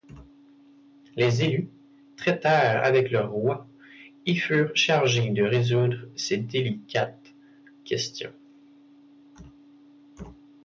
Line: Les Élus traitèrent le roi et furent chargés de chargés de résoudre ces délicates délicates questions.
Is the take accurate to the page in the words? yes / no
no